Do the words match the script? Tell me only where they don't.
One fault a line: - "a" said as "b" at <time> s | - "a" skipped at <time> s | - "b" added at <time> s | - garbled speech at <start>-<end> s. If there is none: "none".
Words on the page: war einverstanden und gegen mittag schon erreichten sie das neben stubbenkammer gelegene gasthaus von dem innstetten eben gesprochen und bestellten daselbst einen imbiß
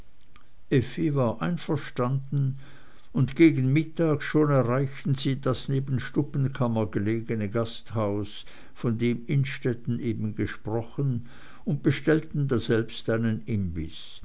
none